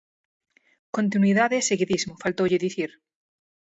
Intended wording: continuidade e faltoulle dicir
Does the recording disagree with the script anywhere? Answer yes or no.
yes